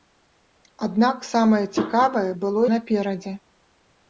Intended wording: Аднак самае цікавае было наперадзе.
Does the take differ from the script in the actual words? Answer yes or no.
no